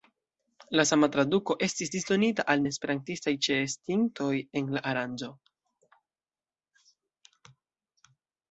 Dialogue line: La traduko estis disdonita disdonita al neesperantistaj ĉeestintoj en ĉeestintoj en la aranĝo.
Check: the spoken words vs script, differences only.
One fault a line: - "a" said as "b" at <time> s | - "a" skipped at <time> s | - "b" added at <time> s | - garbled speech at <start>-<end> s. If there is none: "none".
- "sama" added at 0.9 s
- "disdonita" skipped at 2.4 s
- "ĉeestintoj en" skipped at 4.8 s